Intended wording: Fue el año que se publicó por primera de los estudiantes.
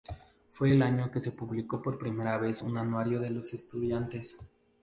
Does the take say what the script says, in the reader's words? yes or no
no